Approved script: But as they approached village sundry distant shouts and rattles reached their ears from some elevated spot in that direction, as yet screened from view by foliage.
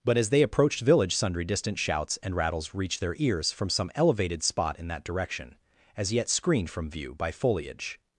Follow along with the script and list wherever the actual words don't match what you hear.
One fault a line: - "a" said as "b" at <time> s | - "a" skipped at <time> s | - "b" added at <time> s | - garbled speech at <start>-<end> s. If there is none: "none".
none